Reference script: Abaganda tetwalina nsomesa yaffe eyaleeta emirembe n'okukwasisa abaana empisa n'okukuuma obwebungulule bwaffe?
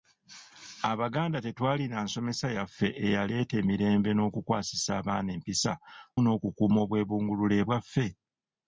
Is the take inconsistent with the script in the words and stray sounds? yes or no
no